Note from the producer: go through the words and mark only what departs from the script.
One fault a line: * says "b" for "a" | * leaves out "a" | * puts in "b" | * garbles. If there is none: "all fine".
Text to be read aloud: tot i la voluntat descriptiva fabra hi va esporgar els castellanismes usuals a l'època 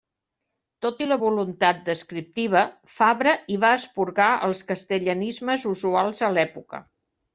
all fine